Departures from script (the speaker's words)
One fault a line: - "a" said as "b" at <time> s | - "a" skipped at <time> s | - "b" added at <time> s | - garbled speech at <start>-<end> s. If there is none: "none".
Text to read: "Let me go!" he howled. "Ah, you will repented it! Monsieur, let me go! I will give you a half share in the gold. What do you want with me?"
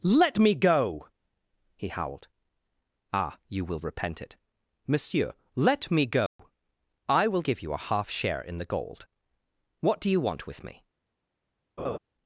- "repented" said as "repent" at 3.8 s